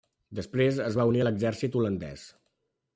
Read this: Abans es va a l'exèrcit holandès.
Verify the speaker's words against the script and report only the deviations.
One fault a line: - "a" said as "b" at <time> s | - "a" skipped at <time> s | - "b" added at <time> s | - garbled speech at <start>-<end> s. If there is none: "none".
- "Abans" said as "Després" at 0.4 s
- "unir" added at 1.1 s